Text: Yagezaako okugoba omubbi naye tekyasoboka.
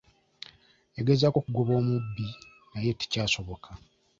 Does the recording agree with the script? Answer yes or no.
yes